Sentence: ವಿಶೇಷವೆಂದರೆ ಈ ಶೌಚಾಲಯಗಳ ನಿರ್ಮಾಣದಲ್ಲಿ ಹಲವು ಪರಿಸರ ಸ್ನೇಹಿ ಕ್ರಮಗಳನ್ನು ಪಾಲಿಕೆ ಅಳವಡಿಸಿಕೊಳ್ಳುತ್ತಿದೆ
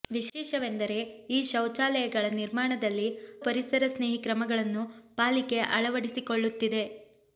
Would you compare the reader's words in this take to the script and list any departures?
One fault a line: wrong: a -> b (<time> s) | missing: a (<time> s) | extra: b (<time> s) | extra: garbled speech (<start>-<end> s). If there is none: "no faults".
missing: ಹಲವು (3.0 s)